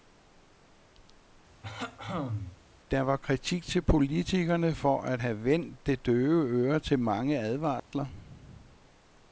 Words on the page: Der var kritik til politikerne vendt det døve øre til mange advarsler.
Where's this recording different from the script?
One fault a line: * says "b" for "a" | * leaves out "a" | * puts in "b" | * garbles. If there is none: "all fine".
* puts in "for at have"